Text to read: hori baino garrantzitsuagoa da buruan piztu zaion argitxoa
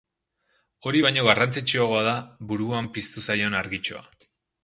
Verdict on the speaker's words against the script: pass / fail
pass